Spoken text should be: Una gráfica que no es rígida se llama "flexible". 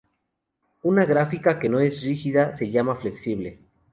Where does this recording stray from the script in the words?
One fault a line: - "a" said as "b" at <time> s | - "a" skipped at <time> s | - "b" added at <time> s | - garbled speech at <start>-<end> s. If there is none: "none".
none